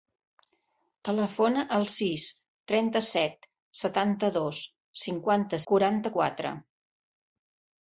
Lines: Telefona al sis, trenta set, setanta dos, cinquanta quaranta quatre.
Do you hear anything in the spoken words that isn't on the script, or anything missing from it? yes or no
no